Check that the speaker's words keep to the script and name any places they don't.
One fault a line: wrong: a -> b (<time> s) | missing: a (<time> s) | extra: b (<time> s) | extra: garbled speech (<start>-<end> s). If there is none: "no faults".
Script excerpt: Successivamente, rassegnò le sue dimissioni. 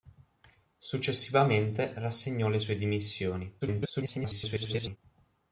extra: garbled speech (3.6-5.0 s)